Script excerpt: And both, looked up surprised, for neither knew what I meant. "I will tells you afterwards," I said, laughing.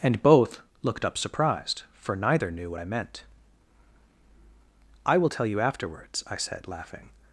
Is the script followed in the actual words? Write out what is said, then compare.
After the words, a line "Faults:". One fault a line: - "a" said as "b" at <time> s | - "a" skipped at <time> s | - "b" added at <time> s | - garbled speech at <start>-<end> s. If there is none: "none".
And both, looked up surprised, for neither knew what I meant. "I will tell you afterwards," I said, laughing.
Faults:
- "tells" said as "tell" at 5.3 s